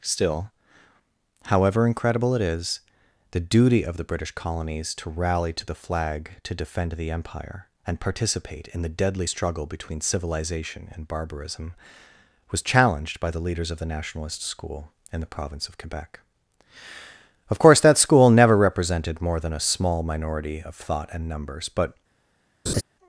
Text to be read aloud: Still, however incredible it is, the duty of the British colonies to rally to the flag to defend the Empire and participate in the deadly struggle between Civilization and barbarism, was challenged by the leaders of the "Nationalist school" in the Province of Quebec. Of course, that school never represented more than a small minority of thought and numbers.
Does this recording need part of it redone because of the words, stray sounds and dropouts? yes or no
yes